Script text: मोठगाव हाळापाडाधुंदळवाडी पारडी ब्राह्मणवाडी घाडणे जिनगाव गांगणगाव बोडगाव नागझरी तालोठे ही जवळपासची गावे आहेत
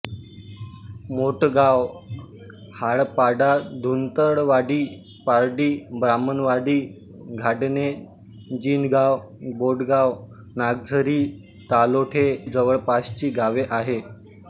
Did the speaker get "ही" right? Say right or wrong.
wrong